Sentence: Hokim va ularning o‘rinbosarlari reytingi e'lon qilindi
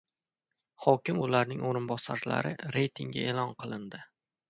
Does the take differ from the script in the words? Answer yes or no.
no